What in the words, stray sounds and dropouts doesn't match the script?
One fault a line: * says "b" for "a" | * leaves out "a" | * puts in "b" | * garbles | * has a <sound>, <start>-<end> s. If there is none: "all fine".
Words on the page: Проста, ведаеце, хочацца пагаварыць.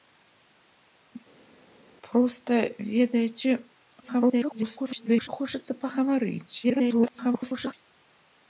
* garbles
* garbles